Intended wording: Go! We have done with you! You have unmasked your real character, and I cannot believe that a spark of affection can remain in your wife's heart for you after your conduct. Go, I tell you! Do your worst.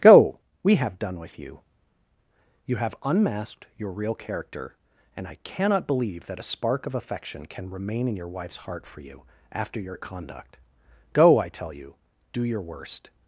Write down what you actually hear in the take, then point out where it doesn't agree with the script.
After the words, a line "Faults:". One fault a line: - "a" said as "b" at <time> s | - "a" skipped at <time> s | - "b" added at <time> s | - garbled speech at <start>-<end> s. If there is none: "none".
Go! We have done with you! You have unmasked your real character, and I cannot believe that a spark of affection can remain in your wife's heart for you after your conduct. Go, I tell you! Do your worst.
Faults:
none